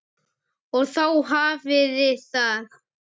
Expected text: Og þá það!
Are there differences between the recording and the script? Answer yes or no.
yes